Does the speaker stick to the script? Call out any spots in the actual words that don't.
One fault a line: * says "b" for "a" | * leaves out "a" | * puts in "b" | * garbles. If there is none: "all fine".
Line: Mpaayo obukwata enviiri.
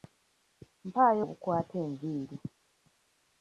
all fine